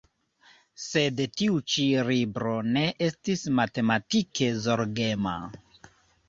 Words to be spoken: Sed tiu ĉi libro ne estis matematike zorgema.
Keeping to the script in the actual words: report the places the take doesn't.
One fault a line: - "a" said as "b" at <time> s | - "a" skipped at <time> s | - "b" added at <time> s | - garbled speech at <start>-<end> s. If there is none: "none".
none